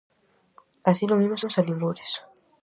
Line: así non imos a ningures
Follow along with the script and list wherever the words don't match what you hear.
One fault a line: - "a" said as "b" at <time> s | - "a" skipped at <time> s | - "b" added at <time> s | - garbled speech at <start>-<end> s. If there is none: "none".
- "imos" added at 1.4 s